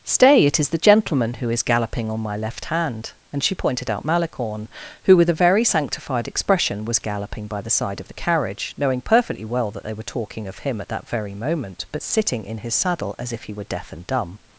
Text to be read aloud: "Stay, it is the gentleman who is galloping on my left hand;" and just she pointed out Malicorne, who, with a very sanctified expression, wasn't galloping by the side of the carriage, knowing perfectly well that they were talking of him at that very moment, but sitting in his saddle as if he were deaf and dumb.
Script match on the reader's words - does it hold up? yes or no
no